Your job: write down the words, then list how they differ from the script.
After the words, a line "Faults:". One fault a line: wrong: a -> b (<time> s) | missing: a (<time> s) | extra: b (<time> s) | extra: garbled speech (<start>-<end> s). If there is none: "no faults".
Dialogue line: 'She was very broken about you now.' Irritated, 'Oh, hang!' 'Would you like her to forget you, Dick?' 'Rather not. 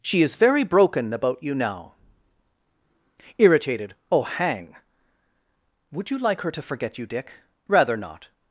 'She is very broken about you now.' Irritated, 'Oh, hang!' 'Would you like her to forget you, Dick?' 'Rather not.
Faults:
wrong: was -> is (0.2 s)